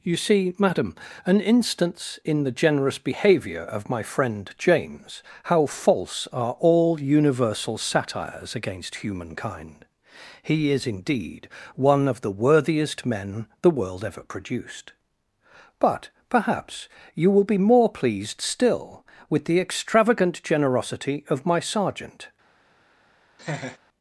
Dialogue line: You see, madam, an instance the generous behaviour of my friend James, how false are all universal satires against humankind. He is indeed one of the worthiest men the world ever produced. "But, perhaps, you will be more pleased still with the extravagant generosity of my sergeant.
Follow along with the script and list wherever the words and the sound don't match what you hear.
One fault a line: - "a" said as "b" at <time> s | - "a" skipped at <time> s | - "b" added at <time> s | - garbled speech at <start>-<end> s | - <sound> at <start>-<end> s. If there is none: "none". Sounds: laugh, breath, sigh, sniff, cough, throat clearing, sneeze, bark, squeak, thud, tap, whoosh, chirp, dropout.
- "in" added at 2.2 s
- laugh at 23.4-23.8 s